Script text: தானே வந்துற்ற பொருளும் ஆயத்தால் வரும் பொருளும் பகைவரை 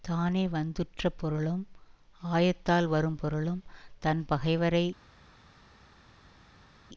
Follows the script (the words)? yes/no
no